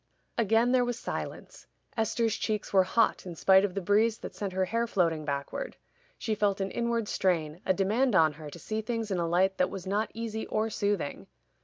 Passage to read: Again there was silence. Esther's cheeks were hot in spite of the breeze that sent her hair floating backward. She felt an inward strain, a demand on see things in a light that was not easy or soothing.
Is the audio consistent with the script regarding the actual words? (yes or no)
no